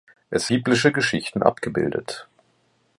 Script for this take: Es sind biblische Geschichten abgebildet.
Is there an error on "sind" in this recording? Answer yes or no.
yes